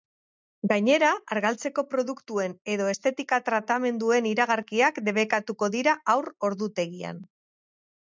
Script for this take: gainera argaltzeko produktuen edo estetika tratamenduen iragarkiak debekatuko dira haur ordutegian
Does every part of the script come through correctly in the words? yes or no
yes